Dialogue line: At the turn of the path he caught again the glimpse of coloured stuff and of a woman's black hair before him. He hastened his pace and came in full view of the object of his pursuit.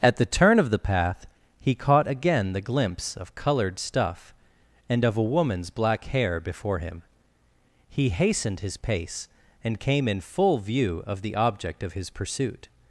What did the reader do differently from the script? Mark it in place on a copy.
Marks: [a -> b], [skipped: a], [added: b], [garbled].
At the turn of the path he caught again the glimpse of coloured stuff and of a woman's black hair before him. He hastened his pace and came in full view of the object of his pursuit.